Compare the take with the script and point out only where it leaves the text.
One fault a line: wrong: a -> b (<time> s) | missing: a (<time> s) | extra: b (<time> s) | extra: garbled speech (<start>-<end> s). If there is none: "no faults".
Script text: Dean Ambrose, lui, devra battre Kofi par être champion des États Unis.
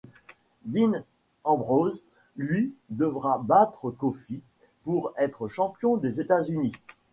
wrong: par -> pour (4.8 s)